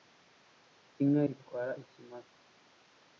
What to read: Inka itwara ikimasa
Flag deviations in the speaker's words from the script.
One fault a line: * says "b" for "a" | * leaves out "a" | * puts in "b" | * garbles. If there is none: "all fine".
all fine